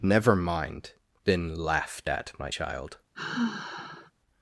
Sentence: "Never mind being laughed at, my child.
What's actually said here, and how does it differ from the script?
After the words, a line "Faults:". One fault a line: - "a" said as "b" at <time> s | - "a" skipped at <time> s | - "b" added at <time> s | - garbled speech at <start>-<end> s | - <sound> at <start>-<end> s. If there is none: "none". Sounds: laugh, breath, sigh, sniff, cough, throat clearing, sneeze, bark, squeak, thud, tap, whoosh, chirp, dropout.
"Never mind been laughed at, my child.
Faults:
- "being" said as "been" at 1.2 s
- sigh at 3.1-4.1 s